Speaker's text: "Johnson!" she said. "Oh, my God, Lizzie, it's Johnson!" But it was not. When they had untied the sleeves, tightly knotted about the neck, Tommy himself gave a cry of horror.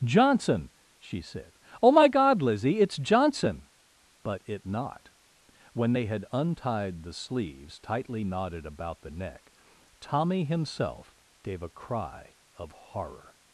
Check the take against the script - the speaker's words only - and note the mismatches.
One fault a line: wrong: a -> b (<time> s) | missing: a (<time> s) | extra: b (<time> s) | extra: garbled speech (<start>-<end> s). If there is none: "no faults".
missing: was (4.7 s)